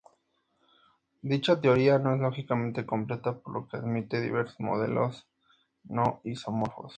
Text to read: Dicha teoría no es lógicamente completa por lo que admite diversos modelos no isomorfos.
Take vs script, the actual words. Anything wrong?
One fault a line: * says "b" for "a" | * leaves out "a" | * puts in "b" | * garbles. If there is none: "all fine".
all fine